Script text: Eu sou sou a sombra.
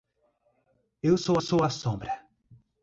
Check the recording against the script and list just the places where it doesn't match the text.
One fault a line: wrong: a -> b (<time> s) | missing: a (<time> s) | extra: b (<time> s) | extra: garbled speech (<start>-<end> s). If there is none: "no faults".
no faults